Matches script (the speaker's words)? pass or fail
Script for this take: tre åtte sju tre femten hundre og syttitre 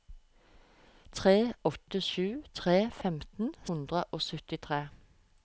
pass